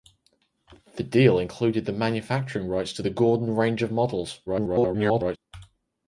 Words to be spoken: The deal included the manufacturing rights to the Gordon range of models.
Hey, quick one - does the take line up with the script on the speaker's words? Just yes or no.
no